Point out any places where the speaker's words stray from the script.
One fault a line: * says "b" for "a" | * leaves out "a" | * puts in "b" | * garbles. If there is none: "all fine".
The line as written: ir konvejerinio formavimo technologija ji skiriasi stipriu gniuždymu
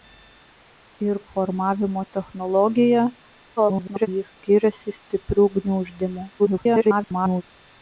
* leaves out "konvejerinio"
* garbles
* garbles